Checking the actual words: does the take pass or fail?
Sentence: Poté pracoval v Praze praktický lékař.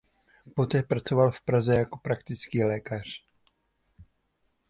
fail